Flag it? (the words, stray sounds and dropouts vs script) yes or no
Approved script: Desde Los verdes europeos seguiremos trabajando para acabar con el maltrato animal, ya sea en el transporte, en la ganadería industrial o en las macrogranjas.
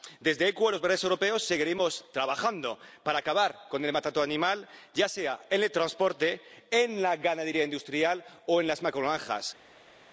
yes